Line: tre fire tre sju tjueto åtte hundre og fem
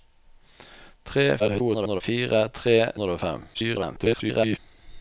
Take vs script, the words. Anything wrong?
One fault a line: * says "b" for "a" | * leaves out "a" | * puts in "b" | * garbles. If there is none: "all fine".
* garbles
* leaves out "sju tjueto åtte"
* garbles